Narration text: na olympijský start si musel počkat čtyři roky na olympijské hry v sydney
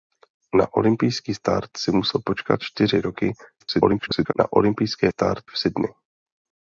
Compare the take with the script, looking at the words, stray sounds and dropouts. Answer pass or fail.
fail